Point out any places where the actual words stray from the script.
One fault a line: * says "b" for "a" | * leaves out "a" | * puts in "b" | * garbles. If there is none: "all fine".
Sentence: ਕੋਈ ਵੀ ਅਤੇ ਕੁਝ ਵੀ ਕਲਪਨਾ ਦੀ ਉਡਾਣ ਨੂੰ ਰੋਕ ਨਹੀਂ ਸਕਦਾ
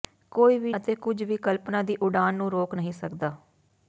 all fine